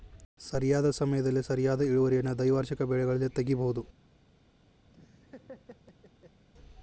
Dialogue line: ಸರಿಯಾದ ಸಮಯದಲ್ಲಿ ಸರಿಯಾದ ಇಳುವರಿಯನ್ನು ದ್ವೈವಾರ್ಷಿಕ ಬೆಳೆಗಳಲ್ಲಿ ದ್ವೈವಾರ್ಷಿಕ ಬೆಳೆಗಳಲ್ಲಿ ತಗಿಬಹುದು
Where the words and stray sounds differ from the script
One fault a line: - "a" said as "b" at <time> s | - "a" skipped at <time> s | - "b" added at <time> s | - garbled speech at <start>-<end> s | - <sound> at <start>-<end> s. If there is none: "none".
- "ದ್ವೈವಾರ್ಷಿಕ ಬೆಳೆಗಳಲ್ಲಿ" skipped at 3.3 s
- laugh at 4.9-6.4 s